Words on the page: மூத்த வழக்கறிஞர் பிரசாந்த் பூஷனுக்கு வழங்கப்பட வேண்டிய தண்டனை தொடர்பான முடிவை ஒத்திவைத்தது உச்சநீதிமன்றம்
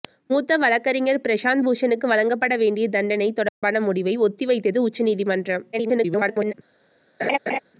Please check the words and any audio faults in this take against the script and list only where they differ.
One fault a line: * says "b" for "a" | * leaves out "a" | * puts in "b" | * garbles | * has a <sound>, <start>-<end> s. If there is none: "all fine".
* has a dropout, 3.5-3.6 s
* garbles
* has a laugh, 7.2-7.6 s